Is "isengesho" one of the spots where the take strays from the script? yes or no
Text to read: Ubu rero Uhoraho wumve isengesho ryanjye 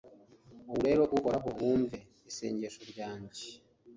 no